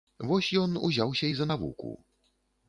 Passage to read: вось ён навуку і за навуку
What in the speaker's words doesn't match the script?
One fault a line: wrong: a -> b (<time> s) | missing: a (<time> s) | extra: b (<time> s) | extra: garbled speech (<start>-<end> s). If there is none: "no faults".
wrong: навуку -> узяўся (0.9 s)